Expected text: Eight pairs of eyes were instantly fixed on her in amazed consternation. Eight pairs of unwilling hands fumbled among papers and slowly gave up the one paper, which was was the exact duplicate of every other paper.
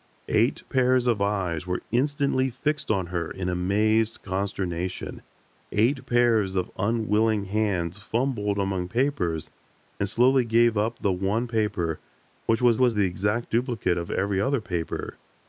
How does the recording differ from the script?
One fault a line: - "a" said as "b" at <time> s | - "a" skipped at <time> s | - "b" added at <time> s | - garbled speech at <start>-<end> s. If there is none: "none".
none